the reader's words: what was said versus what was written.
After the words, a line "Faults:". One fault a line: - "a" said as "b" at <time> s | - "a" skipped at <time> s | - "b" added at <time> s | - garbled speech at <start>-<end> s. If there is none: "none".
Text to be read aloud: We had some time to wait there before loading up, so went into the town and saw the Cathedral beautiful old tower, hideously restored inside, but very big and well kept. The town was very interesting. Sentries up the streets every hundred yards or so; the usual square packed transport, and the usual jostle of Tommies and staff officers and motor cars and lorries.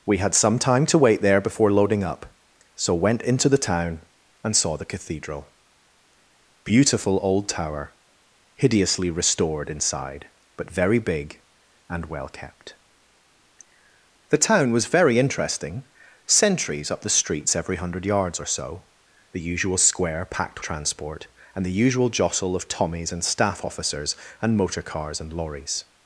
We had some time to wait there before loading up, so went into the town and saw the Cathedral beautiful old tower, hideously restored inside, but very big and well kept. The town was very interesting. Sentries up the streets every hundred yards or so; the usual square packed transport, and the usual jostle of Tommies and staff officers and motor cars and lorries.
Faults:
none